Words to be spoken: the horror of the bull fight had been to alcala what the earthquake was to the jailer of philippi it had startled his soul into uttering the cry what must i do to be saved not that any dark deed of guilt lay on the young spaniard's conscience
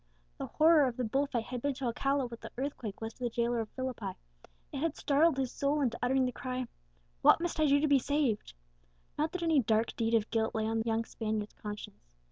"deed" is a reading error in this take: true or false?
false